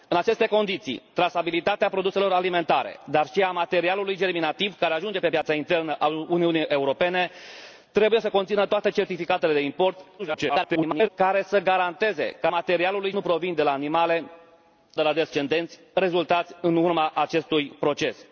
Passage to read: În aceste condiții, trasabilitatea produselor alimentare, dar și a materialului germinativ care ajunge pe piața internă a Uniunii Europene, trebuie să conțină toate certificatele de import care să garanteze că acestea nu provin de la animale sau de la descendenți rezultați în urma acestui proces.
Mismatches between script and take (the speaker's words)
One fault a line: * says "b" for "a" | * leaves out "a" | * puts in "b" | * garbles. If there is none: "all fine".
* garbles
* says "materialului" for "acestea"
* leaves out "sau"